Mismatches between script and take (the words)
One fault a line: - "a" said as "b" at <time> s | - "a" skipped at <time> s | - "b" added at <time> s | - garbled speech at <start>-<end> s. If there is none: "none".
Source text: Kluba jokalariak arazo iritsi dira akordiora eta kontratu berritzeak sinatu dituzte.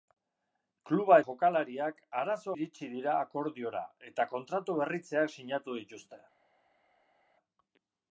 none